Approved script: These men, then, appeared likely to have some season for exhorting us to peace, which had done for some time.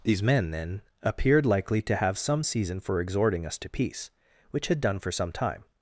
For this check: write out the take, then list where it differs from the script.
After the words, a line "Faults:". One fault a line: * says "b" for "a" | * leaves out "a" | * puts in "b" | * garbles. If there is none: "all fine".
These men, then, appeared likely to have some season for exhorting us to peace, which had done for some time.
Faults:
all fine